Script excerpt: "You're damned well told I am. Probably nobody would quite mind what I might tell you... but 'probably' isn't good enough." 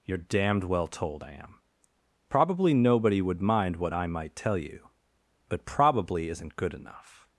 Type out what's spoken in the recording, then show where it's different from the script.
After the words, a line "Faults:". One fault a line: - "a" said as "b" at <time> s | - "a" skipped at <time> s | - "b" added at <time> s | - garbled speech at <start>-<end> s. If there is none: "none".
"You're damned well told I am. Probably nobody would mind what I might tell you... but 'probably' isn't good enough."
Faults:
- "quite" skipped at 3.4 s